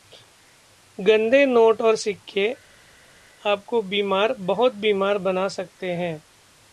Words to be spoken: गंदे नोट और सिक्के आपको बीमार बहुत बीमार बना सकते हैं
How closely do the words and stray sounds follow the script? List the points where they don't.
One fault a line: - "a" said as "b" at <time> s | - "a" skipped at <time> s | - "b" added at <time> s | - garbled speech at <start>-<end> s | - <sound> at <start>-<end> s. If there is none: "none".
none